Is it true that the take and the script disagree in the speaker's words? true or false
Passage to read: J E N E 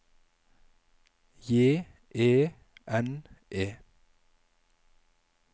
false